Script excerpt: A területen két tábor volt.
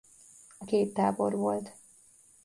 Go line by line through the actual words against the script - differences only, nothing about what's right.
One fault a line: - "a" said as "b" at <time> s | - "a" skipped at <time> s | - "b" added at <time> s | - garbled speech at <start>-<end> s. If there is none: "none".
- "területen" skipped at 0.7 s